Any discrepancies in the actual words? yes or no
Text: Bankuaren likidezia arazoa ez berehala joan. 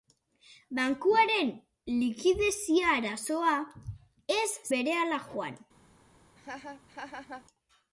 no